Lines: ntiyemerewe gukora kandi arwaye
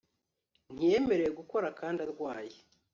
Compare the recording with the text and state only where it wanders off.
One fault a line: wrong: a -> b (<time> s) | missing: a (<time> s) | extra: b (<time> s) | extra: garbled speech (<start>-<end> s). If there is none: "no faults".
no faults